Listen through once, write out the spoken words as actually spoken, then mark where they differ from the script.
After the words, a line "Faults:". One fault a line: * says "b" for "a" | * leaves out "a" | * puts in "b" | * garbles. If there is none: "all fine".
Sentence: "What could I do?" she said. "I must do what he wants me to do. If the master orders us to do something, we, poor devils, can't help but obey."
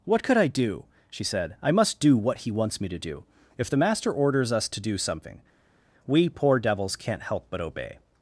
"What could I do?" she said. "I must do what he wants me to do. If the master orders us to do something, we, poor devils, can't help but obey."
Faults:
all fine